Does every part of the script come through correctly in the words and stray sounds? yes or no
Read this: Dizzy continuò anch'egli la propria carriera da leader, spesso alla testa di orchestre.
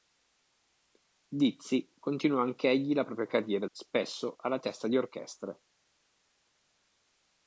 no